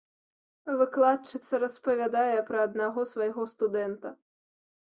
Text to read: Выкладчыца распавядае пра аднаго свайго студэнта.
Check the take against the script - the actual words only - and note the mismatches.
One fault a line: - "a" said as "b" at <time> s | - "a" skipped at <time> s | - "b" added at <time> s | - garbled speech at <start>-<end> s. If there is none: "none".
none